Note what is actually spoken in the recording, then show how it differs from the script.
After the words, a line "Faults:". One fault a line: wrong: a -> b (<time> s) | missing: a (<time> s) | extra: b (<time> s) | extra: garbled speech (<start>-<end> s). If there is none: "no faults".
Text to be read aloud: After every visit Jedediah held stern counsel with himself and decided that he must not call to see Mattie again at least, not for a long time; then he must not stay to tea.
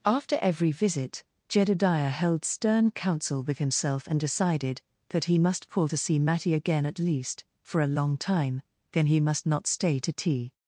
After every visit Jedediah held stern counsel with himself and decided that he must call to see Mattie again at least, for a long time; then he must not stay to tea.
Faults:
missing: not (5.7 s)
missing: not (7.4 s)